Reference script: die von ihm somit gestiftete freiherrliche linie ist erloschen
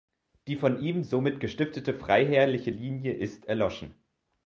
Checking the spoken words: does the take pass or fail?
pass